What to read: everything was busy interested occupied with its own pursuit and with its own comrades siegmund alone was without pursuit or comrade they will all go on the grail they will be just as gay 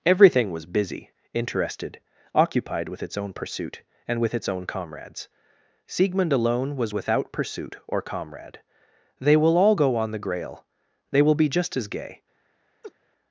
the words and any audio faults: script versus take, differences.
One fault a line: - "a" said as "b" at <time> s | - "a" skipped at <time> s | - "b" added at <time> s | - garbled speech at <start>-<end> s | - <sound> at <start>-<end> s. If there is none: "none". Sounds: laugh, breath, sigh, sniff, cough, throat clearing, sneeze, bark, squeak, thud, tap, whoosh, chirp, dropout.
- laugh at 12.8-12.9 s